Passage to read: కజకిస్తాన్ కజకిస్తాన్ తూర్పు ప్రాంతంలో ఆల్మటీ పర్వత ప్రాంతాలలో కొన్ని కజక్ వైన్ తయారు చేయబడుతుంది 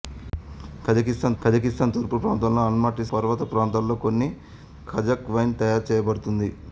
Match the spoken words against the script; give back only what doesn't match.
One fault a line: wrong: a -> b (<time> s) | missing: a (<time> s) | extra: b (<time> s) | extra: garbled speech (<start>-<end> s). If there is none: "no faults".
no faults